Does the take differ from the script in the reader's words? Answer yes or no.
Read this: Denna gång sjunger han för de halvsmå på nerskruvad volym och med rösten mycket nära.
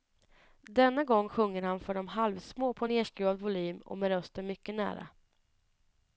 no